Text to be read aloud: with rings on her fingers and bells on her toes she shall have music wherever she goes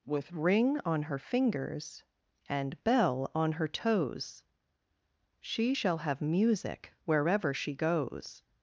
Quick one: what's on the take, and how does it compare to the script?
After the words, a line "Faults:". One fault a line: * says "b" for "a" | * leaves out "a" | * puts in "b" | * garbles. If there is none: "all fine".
with ring on her fingers and bell on her toes she shall have music wherever she goes
Faults:
* says "ring" for "rings"
* says "bell" for "bells"